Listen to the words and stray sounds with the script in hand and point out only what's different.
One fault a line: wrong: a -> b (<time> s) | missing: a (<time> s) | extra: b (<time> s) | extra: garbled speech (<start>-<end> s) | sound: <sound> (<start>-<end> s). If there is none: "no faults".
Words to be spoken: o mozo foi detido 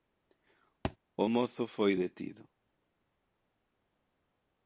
sound: thud (0.8-1.0 s)